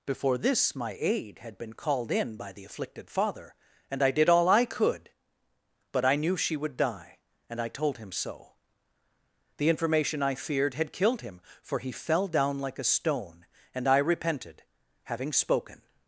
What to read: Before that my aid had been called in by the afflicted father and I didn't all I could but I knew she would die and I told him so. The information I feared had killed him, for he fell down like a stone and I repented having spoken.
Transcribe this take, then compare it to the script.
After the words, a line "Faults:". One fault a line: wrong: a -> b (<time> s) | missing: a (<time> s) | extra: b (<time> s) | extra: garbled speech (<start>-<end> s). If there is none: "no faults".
Before this my aid had been called in by the afflicted father and I did all I could but I knew she would die and I told him so. The information I feared had killed him, for he fell down like a stone and I repented having spoken.
Faults:
wrong: that -> this (0.4 s)
wrong: didn't -> did (4.1 s)